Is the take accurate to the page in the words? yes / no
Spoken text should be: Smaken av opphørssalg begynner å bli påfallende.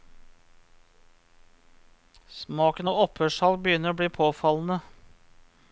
yes